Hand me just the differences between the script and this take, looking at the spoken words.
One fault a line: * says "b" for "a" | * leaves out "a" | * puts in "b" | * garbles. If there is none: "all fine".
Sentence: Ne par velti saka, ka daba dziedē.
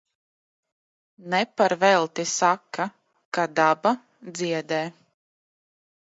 all fine